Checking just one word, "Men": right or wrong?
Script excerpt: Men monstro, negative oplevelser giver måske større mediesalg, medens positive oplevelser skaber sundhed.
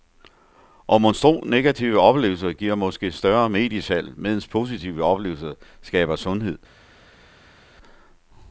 wrong